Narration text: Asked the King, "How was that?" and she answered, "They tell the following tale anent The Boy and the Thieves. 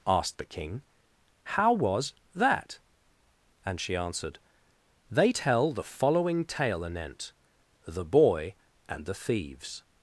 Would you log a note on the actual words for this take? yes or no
no